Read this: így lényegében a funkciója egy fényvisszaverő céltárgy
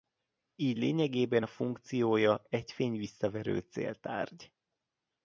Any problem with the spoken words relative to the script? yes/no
no